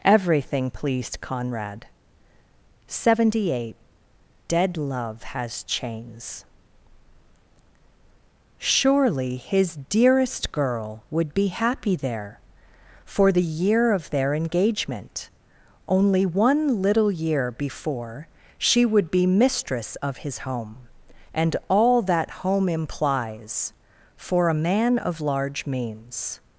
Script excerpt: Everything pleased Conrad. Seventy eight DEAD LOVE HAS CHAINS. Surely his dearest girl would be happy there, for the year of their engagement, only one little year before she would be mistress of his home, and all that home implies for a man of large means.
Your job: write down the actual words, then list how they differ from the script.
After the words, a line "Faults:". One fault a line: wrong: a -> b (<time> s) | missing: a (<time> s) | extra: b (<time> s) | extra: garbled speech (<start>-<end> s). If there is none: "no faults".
Everything pleased Conrad. Seventy eight DEAD LOVE HAS CHAINS. Surely his dearest girl would be happy there, for the year of their engagement, only one little year before she would be mistress of his home, and all that home implies for a man of large means.
Faults:
no faults